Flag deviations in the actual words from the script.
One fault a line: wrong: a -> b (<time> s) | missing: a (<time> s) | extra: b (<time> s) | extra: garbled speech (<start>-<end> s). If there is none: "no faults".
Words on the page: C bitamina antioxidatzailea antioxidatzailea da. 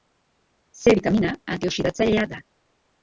missing: antioxidatzailea (2.2 s)